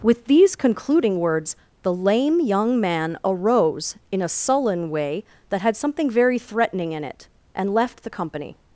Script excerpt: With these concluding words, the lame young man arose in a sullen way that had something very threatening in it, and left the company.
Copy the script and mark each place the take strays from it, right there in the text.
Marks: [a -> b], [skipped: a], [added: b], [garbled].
With these concluding words, the lame young man arose in a sullen way that had something very threatening in it, and left the company.